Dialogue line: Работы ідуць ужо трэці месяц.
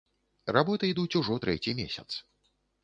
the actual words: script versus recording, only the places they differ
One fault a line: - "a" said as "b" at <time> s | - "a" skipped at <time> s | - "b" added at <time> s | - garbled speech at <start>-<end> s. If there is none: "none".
none